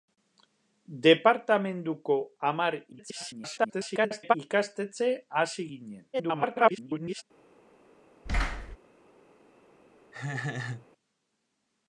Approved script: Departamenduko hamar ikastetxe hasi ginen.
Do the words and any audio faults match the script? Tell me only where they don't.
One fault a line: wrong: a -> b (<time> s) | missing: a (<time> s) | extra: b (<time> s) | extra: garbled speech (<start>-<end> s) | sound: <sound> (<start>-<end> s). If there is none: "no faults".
extra: garbled speech (2.9-4.3 s)
extra: garbled speech (6.1-7.2 s)
sound: thud (8.3-8.8 s)
sound: laugh (10.1-10.9 s)